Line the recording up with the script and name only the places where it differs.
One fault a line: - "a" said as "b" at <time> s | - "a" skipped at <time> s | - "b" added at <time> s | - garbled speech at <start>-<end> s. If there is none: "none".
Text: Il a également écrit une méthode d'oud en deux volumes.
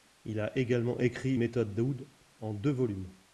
- "une" skipped at 1.4 s